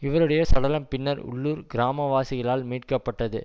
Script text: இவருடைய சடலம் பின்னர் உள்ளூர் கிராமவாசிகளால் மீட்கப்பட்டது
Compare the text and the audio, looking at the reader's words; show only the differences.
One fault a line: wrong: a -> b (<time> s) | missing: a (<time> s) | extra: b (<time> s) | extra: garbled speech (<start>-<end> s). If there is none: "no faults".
no faults